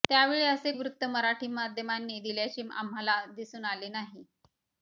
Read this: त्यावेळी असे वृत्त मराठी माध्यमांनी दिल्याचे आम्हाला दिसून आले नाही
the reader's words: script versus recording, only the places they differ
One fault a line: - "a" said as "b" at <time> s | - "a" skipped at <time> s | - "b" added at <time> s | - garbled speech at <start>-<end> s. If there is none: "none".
none